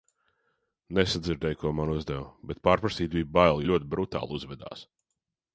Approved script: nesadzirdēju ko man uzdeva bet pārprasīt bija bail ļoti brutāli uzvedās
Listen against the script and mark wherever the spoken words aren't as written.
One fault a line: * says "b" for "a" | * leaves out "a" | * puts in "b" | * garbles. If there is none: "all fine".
all fine